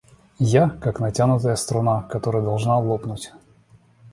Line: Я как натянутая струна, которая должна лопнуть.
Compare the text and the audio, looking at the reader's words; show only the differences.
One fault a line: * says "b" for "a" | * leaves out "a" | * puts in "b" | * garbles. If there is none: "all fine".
all fine